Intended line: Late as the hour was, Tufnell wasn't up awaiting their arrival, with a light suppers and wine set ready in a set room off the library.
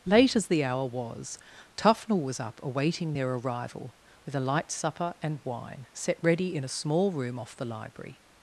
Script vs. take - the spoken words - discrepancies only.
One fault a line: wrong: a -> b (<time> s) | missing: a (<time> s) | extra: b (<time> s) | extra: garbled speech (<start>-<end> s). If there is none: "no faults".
wrong: wasn't -> was (2.2 s)
wrong: suppers -> supper (4.7 s)
wrong: set -> small (6.7 s)